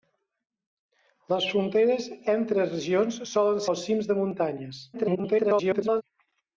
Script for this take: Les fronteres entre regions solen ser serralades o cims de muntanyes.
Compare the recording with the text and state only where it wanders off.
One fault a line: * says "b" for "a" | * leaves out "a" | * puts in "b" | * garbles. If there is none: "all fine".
* leaves out "ser serralades"
* garbles